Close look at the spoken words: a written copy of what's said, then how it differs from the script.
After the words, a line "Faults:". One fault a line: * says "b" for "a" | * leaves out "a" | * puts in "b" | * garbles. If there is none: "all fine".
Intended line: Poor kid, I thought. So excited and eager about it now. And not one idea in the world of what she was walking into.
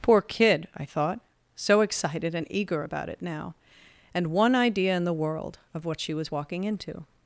Poor kid, I thought. So excited and eager about it now. And one idea in the world of what she was walking into.
Faults:
* leaves out "not"